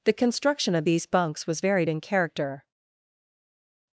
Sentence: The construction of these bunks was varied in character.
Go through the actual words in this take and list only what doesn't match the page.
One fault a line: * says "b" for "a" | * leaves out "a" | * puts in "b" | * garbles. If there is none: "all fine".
all fine